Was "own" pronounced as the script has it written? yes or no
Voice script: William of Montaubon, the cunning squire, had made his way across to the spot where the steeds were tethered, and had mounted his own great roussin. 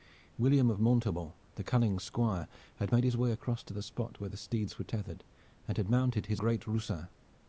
no